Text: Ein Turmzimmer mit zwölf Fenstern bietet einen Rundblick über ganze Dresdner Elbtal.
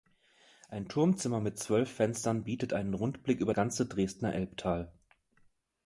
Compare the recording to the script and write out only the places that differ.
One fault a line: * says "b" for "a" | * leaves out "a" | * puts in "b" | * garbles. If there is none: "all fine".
all fine